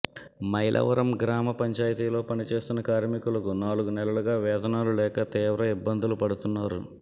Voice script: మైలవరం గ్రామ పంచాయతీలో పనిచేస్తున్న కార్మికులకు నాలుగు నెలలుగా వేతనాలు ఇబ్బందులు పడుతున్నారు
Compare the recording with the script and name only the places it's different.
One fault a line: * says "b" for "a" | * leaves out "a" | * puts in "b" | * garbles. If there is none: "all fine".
* puts in "లేక తీవ్ర"